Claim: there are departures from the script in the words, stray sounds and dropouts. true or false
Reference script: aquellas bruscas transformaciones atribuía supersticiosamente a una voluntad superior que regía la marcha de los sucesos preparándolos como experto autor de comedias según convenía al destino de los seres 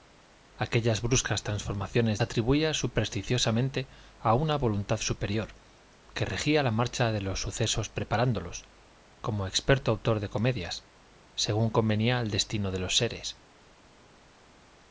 false